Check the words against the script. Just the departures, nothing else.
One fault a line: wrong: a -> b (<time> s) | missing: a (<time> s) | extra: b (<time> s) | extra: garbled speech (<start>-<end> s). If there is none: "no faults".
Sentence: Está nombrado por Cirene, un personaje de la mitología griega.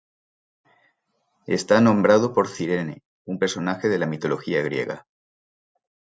no faults